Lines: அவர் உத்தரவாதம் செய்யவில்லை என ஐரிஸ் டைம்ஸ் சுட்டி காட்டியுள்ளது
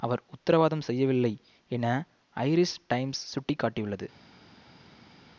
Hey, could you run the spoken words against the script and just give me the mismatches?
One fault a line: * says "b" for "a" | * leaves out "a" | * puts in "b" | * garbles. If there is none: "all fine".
all fine